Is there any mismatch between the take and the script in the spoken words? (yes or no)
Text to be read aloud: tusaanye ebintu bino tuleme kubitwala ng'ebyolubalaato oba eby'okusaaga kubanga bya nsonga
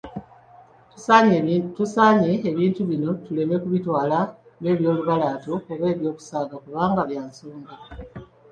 no